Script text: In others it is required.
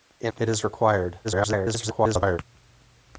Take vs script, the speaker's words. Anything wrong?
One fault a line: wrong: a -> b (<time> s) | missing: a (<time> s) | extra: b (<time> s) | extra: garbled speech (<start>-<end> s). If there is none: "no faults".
missing: others (0.3 s)
extra: garbled speech (1.2-2.4 s)